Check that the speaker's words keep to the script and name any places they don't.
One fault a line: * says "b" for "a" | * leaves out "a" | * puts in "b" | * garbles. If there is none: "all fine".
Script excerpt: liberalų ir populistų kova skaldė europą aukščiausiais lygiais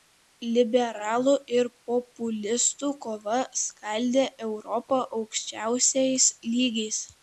all fine